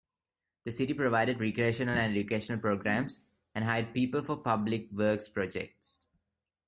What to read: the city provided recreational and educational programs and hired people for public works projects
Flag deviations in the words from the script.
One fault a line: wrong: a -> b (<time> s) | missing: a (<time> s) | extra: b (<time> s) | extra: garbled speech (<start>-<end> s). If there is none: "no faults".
no faults